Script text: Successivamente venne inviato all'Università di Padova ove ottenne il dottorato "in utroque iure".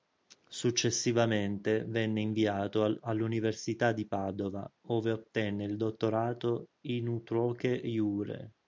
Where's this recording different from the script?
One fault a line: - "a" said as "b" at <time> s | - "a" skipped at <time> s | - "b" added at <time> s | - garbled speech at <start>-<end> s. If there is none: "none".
none